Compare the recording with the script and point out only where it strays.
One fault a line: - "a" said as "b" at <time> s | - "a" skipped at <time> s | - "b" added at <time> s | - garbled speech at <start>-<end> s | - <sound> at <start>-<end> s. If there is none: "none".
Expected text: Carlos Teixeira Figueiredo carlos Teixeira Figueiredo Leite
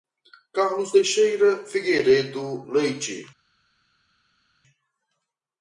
- "carlos Teixeira Figueiredo" skipped at 2.6 s